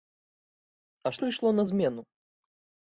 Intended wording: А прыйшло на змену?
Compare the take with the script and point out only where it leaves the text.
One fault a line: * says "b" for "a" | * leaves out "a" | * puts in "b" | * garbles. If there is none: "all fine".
all fine